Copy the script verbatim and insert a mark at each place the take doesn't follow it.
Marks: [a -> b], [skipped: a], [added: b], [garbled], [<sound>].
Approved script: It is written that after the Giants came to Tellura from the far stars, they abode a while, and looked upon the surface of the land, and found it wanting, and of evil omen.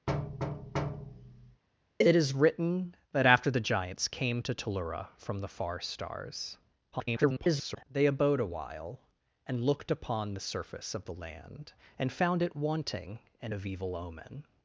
[thud] It is written that after the Giants came to Tellura from the far stars, [garbled] they abode a while, and looked upon the surface of the land, and found it wanting, and of evil omen.